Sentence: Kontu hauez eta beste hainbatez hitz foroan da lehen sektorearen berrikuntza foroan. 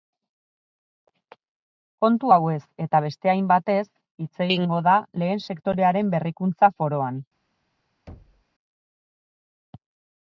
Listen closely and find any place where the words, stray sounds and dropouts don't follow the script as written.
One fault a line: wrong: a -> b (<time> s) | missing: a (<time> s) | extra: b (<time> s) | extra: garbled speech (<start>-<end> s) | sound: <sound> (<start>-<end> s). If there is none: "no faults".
wrong: foroan -> egingo (4.5 s)
sound: thud (8.1-8.4 s)